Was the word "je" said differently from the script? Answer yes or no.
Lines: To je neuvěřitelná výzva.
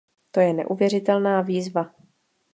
no